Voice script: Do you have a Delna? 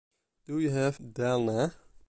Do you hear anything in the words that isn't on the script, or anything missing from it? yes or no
yes